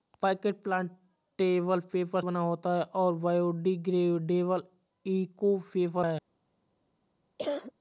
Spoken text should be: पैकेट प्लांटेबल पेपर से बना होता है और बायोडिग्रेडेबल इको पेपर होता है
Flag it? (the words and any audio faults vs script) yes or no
yes